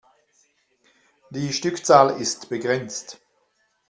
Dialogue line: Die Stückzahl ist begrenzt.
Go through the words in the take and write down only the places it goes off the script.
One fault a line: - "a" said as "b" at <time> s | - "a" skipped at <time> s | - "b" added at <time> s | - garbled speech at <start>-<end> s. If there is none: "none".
none